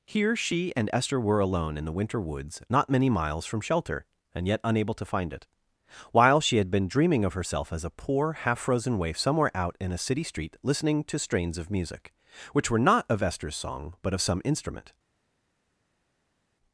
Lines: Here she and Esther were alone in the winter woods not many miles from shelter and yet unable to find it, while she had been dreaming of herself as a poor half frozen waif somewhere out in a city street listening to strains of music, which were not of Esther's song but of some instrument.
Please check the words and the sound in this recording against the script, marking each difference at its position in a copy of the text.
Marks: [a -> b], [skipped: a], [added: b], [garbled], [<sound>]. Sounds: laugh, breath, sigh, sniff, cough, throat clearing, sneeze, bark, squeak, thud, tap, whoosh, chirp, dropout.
Here she and Esther were alone in the winter woods not many miles from shelter and yet unable to find it, while she had been dreaming of herself as a poor half frozen waif somewhere out in a city street listening to strains of music, which were not of Esther's song but of some instrument.